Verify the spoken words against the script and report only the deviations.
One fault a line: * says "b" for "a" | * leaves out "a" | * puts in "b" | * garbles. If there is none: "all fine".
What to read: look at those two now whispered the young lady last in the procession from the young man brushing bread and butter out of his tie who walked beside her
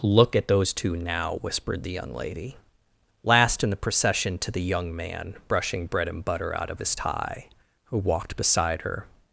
* says "to" for "from"